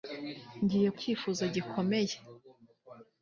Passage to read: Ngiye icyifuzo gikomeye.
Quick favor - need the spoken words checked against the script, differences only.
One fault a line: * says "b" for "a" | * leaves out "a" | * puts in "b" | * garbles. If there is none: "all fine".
all fine